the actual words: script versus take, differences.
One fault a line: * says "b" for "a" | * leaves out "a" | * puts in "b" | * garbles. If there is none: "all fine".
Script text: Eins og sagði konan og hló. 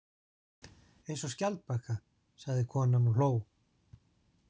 * puts in "skjaldbaka"